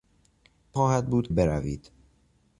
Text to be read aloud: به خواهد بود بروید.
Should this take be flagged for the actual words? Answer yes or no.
no